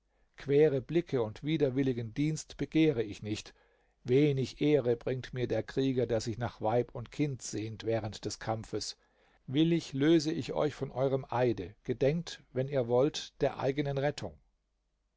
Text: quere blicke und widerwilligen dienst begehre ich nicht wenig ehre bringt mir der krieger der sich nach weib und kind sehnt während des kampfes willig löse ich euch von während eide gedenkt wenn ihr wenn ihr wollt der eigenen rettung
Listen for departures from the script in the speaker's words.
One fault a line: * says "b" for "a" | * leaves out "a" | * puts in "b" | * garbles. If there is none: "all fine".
* says "eurem" for "während"
* leaves out "wenn ihr"